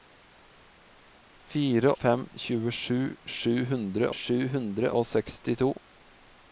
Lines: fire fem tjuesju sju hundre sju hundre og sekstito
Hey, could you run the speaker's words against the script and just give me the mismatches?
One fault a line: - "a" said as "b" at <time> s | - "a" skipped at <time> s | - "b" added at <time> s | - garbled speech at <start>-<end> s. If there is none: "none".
none